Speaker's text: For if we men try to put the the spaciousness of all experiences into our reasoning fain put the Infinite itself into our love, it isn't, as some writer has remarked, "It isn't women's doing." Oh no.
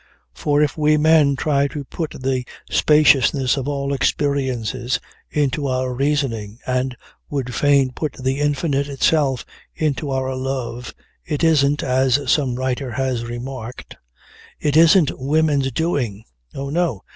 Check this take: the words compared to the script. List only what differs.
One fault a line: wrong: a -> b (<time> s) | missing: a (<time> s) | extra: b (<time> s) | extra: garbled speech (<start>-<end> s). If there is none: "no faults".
missing: the (2.4 s)
extra: and would (6.7 s)